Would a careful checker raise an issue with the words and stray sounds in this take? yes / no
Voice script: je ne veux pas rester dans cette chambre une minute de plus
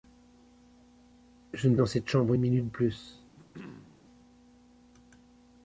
yes